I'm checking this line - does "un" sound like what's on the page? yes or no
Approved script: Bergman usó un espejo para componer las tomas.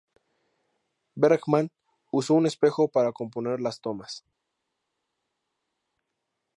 yes